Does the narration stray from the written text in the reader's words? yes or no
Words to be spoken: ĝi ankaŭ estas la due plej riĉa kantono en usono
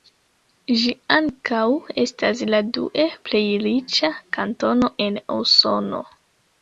no